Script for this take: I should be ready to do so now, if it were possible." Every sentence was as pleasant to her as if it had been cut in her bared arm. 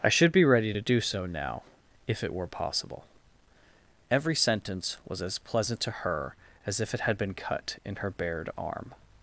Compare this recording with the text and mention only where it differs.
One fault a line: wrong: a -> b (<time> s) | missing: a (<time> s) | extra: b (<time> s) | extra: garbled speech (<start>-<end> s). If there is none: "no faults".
no faults